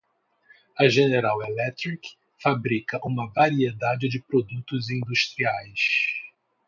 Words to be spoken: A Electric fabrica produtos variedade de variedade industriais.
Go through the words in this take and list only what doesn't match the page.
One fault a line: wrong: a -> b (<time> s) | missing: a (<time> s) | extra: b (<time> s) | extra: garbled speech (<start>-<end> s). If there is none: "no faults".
extra: General (0.9 s)
wrong: produtos -> uma (3.0 s)
wrong: variedade -> produtos (4.2 s)